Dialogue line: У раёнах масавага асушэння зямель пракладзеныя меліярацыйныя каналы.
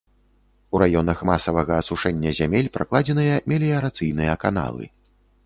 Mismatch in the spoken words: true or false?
false